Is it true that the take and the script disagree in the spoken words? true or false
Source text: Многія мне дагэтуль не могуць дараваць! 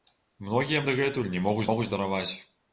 true